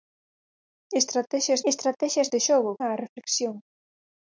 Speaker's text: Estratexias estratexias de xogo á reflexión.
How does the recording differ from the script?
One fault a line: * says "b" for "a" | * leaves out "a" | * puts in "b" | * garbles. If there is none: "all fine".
all fine